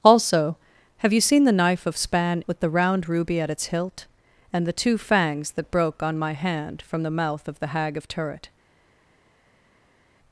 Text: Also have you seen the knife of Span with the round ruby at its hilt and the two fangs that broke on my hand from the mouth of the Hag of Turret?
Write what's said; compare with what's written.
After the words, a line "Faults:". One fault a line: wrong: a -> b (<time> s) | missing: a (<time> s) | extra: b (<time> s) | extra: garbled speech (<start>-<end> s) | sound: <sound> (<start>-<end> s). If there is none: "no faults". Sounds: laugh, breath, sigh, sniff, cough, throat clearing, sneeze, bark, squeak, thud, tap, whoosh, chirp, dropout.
Also have you seen the knife of Span with the round ruby at its hilt and the two fangs that broke on my hand from the mouth of the Hag of Turret?
Faults:
no faults